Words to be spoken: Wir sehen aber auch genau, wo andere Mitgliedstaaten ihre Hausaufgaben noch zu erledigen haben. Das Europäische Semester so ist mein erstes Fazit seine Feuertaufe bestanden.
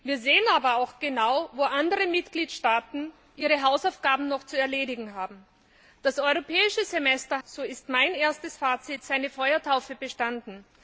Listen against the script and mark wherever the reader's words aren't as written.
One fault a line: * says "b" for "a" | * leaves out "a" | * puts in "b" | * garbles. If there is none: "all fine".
all fine